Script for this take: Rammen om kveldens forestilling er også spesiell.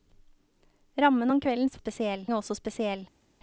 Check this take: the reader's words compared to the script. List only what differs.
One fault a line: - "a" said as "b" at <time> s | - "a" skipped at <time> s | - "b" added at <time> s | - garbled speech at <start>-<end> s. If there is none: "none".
- "forestilling" said as "spesiell" at 1.8 s